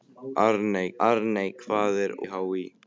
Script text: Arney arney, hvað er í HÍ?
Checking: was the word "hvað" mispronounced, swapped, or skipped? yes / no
no